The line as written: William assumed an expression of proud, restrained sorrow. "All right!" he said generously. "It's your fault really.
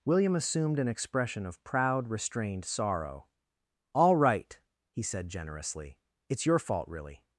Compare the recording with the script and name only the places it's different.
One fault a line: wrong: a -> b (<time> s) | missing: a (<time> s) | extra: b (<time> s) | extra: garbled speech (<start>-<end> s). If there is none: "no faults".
no faults